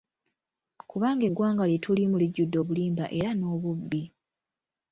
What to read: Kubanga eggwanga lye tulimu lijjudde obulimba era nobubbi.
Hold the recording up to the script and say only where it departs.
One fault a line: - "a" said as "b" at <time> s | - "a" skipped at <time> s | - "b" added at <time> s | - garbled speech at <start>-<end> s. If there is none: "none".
none